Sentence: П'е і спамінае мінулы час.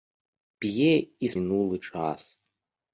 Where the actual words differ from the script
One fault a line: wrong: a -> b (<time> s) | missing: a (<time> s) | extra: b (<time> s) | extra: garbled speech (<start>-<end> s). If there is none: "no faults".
missing: спамінае (1.3 s)